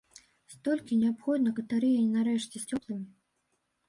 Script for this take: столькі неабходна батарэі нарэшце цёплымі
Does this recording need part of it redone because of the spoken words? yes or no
no